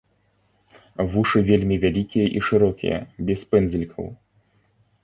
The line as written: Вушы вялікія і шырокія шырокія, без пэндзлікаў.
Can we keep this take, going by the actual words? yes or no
no